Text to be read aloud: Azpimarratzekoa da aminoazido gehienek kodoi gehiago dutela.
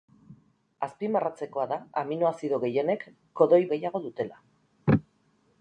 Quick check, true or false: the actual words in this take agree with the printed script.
true